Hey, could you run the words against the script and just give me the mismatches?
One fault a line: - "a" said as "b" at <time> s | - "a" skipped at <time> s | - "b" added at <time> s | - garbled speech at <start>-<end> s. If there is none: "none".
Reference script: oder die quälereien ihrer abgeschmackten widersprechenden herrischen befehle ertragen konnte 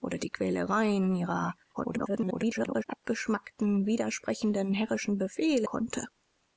- garbled speech at 1.7-2.8 s
- "ertragen" skipped at 5.7 s